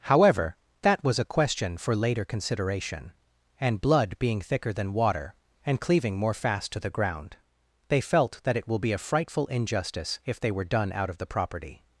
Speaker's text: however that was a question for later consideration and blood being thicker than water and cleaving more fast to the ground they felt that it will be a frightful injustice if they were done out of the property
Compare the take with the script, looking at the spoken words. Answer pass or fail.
pass